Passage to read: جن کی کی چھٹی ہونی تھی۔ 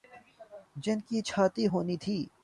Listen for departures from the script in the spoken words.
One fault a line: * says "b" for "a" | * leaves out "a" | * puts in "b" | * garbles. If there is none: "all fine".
* leaves out "کی"